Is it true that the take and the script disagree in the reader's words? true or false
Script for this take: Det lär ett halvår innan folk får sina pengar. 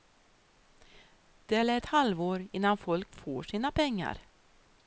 false